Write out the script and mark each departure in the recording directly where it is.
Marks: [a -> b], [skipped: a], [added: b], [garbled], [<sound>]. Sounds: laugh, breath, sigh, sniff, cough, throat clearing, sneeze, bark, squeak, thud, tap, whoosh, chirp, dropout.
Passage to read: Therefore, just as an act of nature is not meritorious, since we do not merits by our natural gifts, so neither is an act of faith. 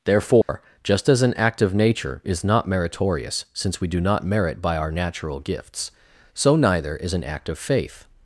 Therefore, [dropout] just as an act of nature is not meritorious, since we do not [merits -> merit] by our natural gifts, so neither is an act of faith.